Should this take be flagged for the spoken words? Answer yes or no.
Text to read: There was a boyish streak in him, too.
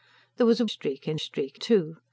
yes